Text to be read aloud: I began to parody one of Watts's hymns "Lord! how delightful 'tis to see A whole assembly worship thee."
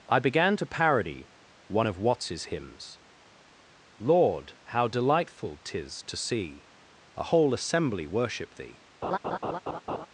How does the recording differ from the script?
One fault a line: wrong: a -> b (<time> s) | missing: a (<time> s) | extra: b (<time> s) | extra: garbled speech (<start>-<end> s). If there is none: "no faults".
no faults